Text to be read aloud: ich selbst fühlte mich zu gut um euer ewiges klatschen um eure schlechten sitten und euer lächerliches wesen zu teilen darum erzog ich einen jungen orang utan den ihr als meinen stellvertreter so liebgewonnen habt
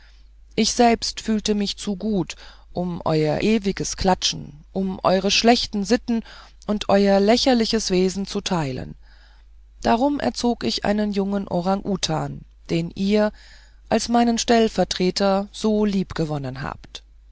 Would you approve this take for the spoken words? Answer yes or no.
yes